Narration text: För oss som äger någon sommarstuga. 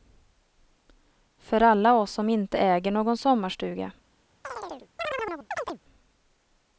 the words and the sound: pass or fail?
fail